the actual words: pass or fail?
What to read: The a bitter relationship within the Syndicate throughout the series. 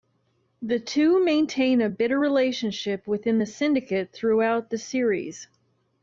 fail